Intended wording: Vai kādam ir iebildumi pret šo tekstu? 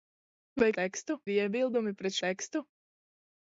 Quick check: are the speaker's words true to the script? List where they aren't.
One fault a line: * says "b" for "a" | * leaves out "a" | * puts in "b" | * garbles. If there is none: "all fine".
* says "tekstu" for "kādam"
* leaves out "šo"